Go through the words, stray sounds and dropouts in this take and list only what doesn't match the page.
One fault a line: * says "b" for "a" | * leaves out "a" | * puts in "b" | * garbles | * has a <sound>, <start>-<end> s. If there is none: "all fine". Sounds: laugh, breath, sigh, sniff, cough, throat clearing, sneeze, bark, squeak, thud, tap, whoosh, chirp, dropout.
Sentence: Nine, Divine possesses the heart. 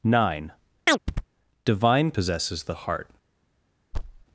* has a chirp, 0.9-1.3 s
* has a thud, 3.9-4.2 s